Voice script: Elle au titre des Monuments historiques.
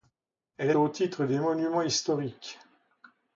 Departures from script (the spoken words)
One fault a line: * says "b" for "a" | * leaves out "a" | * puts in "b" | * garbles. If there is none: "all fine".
all fine